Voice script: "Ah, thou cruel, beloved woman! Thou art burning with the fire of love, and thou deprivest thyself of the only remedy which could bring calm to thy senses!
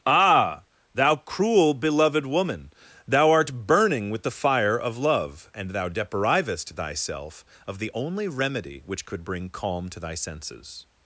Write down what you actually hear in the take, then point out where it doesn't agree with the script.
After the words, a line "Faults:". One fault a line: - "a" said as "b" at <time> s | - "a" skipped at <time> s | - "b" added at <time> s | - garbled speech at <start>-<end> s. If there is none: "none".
"Ah, thou cruel, beloved woman! Thou art burning with the fire of love, and thou deprivest thyself of the only remedy which could bring calm to thy senses!
Faults:
none